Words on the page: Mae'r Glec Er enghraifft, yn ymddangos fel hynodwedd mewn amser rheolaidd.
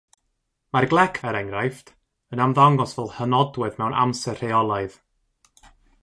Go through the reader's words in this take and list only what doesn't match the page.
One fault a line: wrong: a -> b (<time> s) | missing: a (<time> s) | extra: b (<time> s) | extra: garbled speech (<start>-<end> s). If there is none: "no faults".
no faults